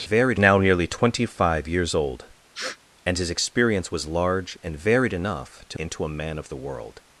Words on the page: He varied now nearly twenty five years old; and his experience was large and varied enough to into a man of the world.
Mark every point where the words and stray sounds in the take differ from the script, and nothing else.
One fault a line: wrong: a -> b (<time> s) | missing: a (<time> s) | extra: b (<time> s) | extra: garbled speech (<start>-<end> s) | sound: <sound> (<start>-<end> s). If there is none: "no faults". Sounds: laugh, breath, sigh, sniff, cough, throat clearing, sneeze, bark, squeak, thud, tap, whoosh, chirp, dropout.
sound: sniff (2.5-2.8 s)